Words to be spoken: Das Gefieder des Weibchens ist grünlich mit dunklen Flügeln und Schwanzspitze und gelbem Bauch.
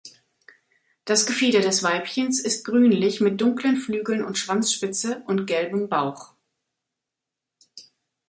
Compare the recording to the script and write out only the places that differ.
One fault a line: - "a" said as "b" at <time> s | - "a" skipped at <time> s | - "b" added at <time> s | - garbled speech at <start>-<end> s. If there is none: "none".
none